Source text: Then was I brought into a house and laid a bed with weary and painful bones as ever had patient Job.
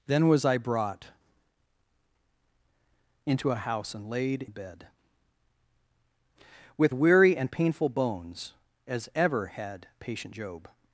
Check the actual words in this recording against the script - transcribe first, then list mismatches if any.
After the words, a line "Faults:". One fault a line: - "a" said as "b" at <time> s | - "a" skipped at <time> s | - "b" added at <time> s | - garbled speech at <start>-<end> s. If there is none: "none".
Then was I brought into a house and laid a bed with weary and painful bones as ever had patient Job.
Faults:
none